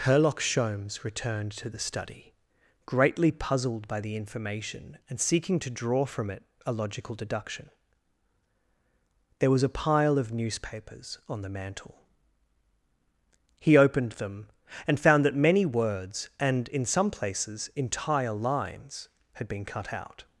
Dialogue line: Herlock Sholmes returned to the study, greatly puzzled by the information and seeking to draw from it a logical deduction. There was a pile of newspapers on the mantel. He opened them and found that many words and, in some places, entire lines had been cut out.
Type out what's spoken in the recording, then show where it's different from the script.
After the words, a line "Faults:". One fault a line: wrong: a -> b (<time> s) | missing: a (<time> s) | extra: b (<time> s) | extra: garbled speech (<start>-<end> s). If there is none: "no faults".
Herlock Sholmes returned to the study, greatly puzzled by the information and seeking to draw from it a logical deduction. There was a pile of newspapers on the mantel. He opened them and found that many words and, in some places, entire lines had been cut out.
Faults:
no faults